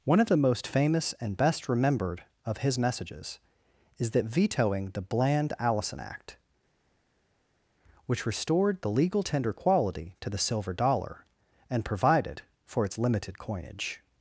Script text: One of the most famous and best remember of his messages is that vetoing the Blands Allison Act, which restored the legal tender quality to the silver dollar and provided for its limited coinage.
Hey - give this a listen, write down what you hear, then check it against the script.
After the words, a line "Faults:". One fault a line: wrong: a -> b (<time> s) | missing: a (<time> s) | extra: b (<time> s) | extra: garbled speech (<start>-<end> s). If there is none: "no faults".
One of the most famous and best remembered of his messages is that vetoing the Bland Allison Act, which restored the legal tender quality to the silver dollar and provided for its limited coinage.
Faults:
wrong: remember -> remembered (1.7 s)
wrong: Blands -> Bland (5.0 s)